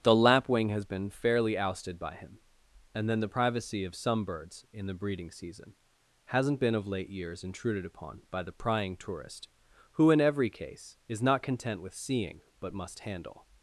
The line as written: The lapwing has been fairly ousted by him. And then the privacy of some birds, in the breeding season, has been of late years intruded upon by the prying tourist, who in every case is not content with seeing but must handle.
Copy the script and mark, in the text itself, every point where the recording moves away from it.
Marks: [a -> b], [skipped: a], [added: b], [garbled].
The lapwing has been fairly ousted by him. And then the privacy of some birds, in the breeding season, [has -> hasn't] been of late years intruded upon by the prying tourist, who in every case is not content with seeing but must handle.